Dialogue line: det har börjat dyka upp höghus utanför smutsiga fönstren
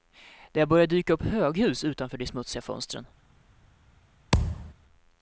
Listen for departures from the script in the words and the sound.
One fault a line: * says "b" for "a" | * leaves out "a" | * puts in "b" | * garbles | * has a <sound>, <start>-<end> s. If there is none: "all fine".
* puts in "de"
* has a thud, 4.3-4.7 s